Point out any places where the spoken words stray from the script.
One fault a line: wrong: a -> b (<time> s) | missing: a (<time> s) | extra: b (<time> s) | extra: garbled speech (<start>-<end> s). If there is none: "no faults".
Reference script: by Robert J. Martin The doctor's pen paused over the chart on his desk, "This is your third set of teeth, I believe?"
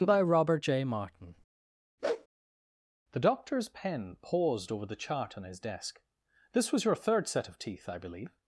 wrong: is -> was (6.7 s)